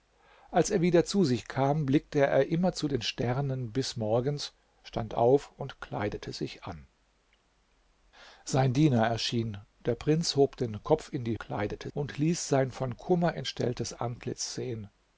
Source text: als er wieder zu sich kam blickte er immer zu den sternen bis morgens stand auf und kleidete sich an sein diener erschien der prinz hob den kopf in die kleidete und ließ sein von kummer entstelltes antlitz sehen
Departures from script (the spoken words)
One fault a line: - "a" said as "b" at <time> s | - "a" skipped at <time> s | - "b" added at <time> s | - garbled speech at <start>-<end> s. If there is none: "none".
none